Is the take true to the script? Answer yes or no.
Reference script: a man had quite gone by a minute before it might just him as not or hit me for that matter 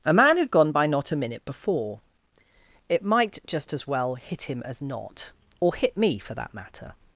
no